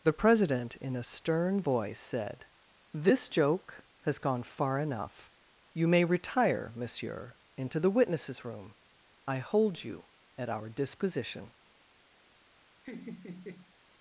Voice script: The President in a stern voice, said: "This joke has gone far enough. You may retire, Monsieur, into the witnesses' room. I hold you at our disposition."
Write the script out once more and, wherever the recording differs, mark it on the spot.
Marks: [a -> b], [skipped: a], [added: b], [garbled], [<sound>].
The President in a stern voice, said: "This joke has gone far enough. You may retire, Monsieur, into the witnesses' room. I hold you at our disposition." [laugh]